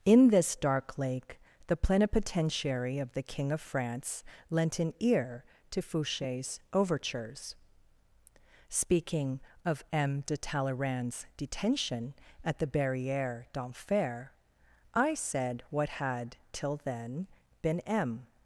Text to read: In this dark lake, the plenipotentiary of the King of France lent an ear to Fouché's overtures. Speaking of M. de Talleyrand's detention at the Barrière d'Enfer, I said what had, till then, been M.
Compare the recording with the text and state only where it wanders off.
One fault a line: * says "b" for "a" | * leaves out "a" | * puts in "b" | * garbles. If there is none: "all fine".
all fine